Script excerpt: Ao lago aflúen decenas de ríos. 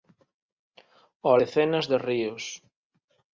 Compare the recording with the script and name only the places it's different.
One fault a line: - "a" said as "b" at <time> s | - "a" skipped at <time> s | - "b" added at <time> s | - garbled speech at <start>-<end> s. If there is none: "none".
- "lago aflúen" skipped at 1.4 s